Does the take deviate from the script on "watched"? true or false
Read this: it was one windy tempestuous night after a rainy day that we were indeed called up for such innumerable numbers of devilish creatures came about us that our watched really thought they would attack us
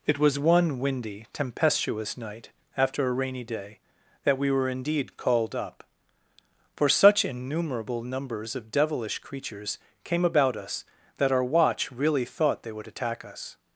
true